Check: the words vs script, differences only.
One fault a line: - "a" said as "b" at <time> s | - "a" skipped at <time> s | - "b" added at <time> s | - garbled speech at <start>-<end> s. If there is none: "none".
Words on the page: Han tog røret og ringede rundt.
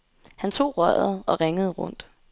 none